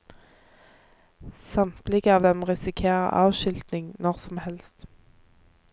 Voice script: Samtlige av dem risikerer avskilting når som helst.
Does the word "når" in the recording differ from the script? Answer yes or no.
no